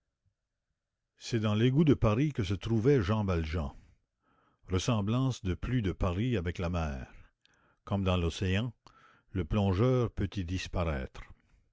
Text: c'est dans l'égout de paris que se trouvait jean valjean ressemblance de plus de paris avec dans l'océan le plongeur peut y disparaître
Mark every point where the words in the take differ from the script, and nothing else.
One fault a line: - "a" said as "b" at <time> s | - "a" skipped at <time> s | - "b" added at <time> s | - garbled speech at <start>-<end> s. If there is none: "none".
- "la mer comme" added at 6.6 s